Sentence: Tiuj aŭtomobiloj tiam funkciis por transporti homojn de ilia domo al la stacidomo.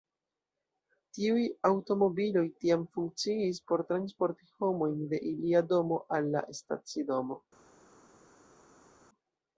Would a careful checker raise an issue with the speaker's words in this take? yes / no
no